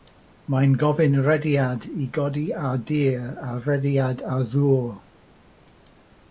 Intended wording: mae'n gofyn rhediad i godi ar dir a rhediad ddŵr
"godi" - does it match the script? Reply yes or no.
yes